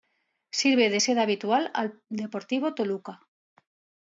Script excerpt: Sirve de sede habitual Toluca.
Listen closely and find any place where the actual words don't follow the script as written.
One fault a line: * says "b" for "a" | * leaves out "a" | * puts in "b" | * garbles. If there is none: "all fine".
* puts in "al Deportivo"